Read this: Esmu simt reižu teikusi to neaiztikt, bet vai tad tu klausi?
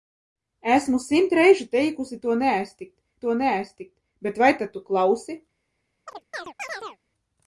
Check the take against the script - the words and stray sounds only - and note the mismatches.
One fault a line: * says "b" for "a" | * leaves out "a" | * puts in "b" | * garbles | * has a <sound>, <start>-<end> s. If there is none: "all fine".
* puts in "to neaiztikt"
* has a chirp, 6.1-7.0 s